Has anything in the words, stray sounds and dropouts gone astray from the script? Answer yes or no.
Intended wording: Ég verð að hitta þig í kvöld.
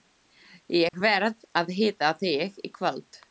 yes